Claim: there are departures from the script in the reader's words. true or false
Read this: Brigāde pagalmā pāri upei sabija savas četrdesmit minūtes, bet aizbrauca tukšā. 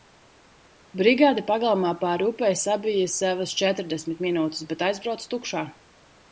false